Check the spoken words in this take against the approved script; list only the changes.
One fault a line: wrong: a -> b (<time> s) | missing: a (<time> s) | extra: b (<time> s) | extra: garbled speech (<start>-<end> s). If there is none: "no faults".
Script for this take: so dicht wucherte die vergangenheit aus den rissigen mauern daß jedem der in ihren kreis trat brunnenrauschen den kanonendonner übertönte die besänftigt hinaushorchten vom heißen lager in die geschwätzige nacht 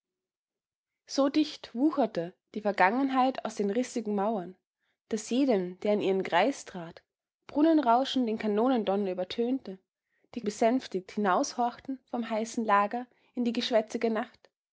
no faults